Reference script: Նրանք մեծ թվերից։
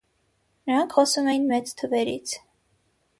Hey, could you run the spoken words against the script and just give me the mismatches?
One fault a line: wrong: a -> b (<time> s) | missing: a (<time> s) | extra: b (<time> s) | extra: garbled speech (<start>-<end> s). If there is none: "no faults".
extra: խոսում էին (1.0 s)